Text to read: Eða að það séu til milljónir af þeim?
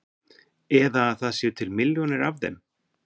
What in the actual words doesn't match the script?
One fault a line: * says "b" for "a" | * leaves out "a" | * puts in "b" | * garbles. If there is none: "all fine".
all fine